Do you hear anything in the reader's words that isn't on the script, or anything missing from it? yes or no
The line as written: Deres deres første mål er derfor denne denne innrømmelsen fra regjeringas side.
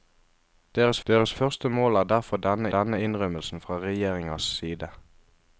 no